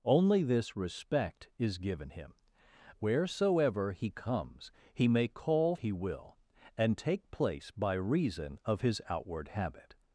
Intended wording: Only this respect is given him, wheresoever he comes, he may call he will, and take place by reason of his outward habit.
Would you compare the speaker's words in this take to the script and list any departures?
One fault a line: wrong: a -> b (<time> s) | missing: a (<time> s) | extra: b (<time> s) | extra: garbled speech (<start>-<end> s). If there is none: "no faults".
no faults